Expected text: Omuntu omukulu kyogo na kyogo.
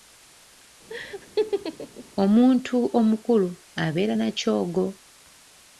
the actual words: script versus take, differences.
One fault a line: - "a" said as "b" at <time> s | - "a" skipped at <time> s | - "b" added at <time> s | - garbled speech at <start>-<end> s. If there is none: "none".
- "kyogo" said as "abeera" at 3.8 s